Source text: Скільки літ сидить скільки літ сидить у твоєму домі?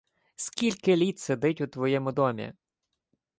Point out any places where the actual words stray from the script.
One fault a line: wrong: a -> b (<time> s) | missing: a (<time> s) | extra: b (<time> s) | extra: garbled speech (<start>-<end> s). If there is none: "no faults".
missing: скільки літ сидить (1.6 s)